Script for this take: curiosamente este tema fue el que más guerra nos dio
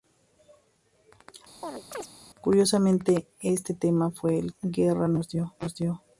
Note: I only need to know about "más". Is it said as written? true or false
true